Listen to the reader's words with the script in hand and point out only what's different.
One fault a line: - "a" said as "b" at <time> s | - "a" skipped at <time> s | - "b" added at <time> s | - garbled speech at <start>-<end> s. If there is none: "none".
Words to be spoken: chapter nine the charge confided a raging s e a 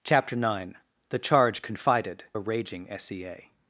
none